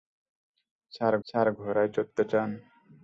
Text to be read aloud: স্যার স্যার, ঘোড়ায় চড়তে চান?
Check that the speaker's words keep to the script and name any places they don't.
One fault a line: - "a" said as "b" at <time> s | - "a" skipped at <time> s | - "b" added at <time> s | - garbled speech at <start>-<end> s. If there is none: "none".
none